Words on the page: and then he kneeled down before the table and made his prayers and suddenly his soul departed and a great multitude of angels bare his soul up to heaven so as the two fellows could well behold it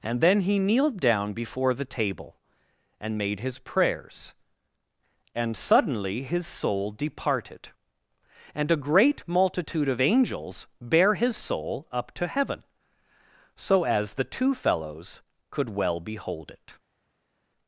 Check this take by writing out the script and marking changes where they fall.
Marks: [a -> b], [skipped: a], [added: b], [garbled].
and then he kneeled down before the table and made his prayers and suddenly his soul departed and a great multitude of angels bare his soul up to heaven so as the two fellows could well behold it